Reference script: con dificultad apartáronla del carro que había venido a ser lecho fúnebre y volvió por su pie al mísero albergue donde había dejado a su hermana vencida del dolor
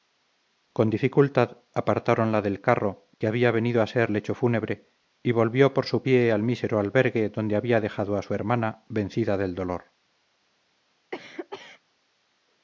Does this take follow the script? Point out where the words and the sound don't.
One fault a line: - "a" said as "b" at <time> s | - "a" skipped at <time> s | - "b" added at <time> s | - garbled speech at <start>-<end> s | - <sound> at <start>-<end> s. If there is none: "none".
- cough at 11.1-11.8 s